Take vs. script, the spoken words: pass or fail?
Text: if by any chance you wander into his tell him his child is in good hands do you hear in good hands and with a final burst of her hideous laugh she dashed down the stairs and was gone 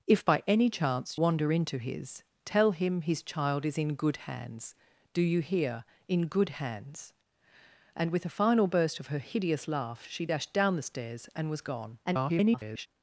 fail